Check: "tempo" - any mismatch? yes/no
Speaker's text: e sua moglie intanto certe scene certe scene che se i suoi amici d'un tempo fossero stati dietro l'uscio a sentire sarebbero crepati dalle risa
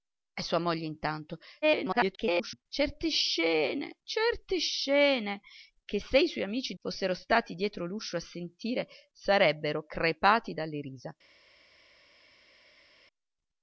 yes